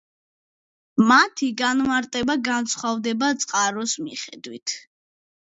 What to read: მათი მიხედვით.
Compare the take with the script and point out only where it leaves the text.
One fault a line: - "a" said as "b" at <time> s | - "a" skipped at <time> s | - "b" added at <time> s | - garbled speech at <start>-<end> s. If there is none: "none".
- "განმარტება განსხვავდება წყაროს" added at 1.6 s